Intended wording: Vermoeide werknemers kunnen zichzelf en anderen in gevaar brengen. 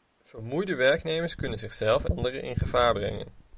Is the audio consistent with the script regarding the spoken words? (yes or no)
no